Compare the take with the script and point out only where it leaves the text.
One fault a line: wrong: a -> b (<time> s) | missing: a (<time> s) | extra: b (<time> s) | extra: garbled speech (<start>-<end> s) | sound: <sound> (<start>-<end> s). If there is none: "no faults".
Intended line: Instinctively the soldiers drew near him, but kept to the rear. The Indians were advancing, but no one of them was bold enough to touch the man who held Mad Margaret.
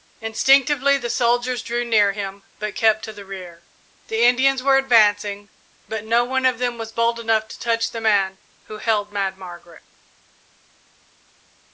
no faults